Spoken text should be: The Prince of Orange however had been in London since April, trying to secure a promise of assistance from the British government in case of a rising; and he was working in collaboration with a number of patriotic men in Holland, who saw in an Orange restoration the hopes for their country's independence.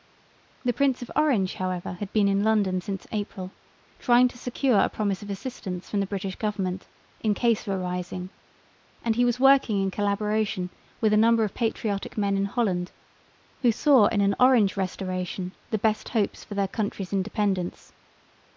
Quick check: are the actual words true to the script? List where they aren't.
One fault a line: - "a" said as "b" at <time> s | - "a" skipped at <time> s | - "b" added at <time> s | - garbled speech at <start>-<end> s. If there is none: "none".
- "best" added at 15.8 s